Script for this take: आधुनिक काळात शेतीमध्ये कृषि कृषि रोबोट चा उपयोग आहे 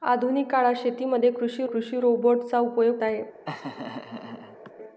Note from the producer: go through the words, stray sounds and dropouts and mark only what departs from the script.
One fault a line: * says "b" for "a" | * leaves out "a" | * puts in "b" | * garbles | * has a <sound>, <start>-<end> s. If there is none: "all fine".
* has a laugh, 3.4-4.7 s